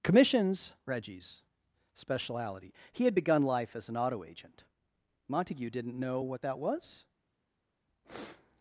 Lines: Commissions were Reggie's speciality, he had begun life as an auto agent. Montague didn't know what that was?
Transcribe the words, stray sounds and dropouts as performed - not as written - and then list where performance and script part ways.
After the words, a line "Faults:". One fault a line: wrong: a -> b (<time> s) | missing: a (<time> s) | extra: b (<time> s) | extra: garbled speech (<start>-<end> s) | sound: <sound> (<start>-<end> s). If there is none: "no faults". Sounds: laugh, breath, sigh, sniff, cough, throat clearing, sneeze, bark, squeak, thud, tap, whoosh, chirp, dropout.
Commissions Reggie's speciality, he had begun life as an auto agent. Montague didn't know what that was?
Faults:
missing: were (0.7 s)